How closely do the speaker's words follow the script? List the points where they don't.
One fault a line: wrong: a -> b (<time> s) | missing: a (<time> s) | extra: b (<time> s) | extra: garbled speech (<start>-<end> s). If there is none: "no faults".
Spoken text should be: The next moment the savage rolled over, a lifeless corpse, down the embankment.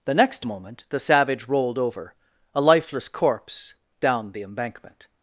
no faults